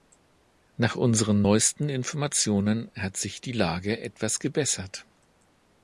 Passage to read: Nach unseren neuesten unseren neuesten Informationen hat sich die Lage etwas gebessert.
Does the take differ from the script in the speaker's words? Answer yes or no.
yes